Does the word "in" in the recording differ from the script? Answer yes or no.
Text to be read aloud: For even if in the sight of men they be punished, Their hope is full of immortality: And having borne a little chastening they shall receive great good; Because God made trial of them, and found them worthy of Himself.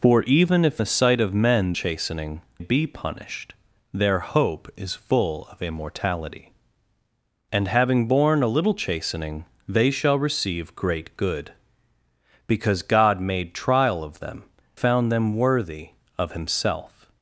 yes